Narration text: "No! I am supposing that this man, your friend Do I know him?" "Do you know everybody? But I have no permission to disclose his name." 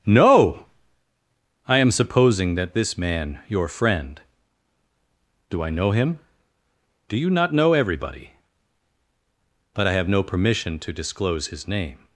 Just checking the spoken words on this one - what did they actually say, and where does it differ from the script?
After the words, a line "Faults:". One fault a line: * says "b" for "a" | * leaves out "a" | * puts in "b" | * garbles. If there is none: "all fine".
"No! I am supposing that this man, your friend Do I know him?" "Do you not know everybody? But I have no permission to disclose his name."
Faults:
* puts in "not"